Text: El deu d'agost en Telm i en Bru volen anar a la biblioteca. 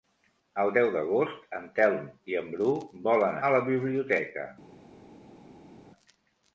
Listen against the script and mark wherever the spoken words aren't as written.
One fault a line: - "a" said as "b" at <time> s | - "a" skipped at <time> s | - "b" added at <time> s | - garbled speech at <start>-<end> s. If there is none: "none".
- "anar" skipped at 3.4 s